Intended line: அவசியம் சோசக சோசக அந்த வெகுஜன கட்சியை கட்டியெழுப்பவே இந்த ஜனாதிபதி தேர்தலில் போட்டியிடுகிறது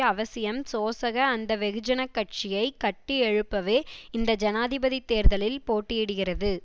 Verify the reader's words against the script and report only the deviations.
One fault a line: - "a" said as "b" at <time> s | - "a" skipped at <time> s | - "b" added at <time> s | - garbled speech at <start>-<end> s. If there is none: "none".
- "சோசக" skipped at 1.2 s